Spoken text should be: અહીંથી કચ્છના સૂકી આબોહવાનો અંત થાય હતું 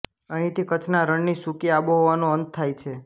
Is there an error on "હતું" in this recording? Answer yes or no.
yes